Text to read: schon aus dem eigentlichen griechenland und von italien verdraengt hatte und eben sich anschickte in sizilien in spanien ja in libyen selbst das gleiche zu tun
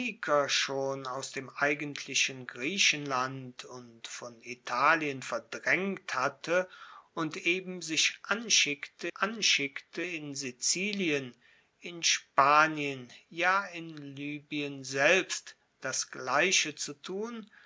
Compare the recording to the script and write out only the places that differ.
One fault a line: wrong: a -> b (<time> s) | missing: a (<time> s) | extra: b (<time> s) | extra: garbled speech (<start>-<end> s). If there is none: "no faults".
extra: anschickte (9.1 s)